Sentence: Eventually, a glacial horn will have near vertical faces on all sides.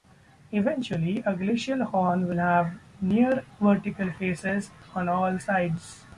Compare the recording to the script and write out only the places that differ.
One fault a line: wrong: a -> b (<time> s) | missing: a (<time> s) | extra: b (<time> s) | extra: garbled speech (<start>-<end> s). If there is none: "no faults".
no faults